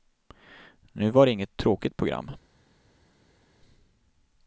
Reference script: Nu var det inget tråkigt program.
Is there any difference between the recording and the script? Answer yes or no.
no